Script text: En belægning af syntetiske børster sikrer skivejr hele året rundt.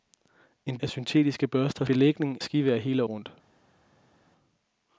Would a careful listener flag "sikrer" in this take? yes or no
yes